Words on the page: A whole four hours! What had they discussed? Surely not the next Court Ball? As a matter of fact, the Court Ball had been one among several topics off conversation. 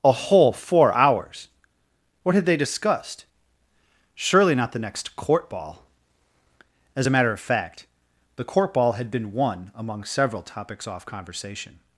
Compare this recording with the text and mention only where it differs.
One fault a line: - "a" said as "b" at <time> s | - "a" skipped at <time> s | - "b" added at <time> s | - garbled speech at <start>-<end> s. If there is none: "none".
none